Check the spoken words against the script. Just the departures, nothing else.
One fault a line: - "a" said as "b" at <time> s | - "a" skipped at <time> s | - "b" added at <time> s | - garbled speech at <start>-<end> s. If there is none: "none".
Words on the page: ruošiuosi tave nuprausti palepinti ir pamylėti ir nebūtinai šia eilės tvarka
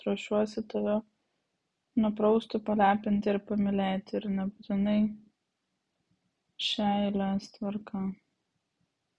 none